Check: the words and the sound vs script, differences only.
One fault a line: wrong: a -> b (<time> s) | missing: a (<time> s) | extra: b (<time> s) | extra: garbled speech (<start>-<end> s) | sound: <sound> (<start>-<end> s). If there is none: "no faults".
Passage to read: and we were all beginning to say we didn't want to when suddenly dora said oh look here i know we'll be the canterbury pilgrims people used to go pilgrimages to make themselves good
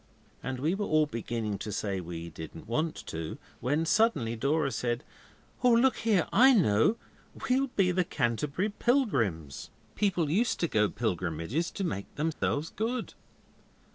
sound: dropout (12.3-12.4 s)